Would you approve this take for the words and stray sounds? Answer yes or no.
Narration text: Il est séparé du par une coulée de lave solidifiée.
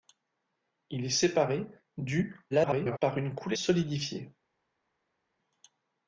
no